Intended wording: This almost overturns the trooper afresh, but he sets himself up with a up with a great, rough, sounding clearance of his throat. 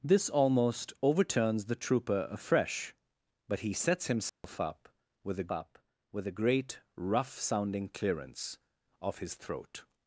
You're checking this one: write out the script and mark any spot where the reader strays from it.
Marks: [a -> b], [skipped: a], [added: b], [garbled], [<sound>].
This almost overturns the trooper afresh, but he sets himself [dropout] up with a up with a great, rough, sounding clearance of his throat.